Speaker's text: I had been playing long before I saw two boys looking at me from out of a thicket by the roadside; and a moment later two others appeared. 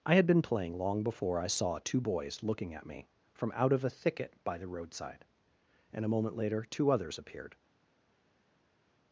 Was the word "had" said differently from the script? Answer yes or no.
no